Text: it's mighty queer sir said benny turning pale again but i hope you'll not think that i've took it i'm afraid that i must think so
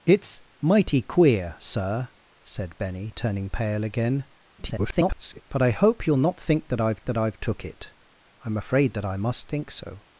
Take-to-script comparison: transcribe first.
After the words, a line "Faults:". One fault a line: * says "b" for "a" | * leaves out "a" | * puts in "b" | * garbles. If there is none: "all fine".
it's mighty queer sir said benny turning pale again [garbled] but i hope you'll not think that i've that i've took it i'm afraid that i must think so
Faults:
* garbles
* puts in "that i've"